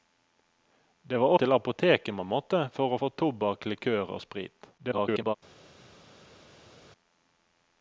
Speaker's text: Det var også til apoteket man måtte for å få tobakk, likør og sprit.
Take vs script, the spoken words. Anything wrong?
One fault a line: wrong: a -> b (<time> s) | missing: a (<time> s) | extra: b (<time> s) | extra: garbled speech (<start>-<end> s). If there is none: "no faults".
missing: også (1.3 s)
extra: garbled speech (4.8-5.3 s)